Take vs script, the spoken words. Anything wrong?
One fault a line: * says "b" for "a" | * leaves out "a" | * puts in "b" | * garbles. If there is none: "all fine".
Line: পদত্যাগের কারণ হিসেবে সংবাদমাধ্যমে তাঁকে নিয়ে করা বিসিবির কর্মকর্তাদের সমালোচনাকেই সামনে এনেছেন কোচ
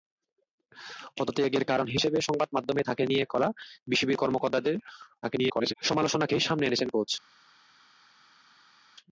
* garbles